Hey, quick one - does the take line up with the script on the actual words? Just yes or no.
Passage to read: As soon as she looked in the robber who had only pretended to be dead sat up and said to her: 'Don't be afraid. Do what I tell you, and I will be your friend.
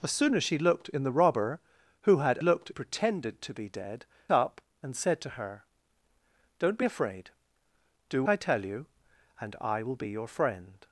no